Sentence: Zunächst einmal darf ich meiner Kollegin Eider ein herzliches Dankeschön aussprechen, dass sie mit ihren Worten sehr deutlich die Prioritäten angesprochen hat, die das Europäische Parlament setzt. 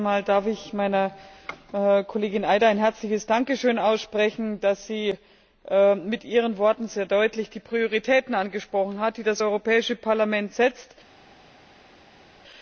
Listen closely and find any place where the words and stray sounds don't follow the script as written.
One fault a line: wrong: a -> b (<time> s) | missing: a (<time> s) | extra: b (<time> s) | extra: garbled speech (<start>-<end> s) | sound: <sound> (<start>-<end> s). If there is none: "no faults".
no faults